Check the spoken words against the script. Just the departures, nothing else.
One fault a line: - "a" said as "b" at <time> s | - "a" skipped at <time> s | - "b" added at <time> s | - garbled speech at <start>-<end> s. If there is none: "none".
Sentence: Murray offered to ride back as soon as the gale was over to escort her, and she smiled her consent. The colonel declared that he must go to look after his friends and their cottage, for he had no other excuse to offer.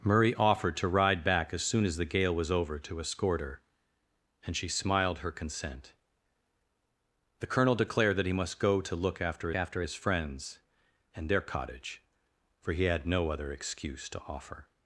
- "after" added at 9.5 s